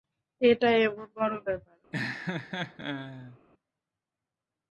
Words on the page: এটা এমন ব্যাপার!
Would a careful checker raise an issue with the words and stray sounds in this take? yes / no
yes